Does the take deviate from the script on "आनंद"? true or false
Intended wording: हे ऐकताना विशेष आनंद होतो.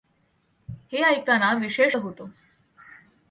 true